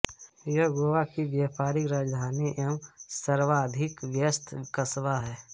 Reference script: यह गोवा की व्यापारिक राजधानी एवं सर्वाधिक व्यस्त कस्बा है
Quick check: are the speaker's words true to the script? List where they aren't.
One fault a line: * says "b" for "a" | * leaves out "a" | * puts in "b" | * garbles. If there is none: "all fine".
all fine